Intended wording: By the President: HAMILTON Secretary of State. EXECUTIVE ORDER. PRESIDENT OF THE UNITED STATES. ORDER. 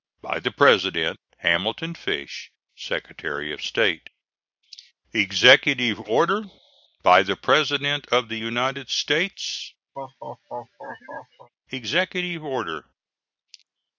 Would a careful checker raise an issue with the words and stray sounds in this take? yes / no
yes